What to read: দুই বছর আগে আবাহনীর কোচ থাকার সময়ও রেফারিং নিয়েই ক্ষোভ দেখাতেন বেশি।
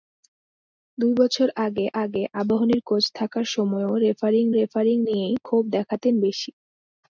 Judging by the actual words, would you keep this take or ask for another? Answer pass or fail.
fail